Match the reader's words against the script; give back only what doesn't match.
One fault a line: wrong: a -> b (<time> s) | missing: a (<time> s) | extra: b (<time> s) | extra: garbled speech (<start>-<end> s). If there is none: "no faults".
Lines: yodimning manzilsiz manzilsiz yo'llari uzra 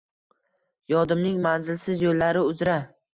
missing: manzilsiz (2.1 s)